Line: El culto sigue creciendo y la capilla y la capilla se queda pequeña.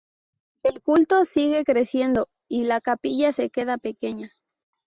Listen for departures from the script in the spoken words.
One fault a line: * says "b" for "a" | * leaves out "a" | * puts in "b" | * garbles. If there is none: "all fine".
* leaves out "y la capilla"